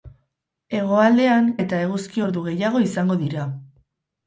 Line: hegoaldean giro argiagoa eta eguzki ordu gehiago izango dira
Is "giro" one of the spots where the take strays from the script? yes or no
yes